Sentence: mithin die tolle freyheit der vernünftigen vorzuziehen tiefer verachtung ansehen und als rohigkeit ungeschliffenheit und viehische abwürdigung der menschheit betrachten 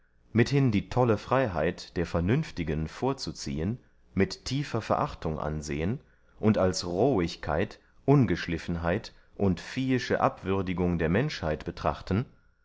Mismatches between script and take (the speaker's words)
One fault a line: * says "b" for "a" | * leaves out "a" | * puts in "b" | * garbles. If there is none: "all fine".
* puts in "mit"